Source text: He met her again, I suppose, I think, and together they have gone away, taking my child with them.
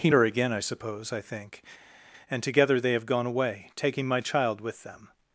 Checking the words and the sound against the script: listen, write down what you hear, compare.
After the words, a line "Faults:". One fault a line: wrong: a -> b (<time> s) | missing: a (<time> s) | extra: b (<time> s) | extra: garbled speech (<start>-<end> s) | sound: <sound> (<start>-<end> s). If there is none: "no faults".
He her again, I suppose, I think, and together they have gone away, taking my child with them.
Faults:
missing: met (0.1 s)